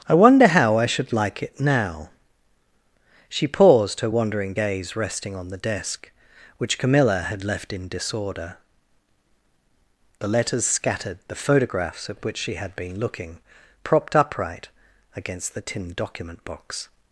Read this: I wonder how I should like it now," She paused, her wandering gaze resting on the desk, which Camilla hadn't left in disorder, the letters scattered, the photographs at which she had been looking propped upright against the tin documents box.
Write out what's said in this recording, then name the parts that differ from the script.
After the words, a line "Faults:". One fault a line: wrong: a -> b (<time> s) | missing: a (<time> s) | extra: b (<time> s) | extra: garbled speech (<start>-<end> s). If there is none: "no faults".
I wonder how I should like it now," She paused, her wandering gaze resting on the desk, which Camilla had left in disorder, the letters scattered, the photographs at which she had been looking propped upright against the tin document box.
Faults:
wrong: hadn't -> had (7.3 s)
wrong: documents -> document (15.9 s)